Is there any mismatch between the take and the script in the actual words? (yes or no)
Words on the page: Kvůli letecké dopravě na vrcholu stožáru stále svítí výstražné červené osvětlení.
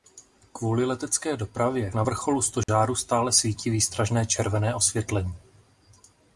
no